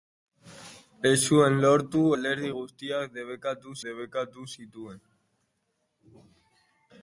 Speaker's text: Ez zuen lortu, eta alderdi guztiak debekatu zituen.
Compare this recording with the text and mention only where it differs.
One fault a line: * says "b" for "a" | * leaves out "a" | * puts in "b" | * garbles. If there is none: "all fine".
* leaves out "eta"
* puts in "debekatu"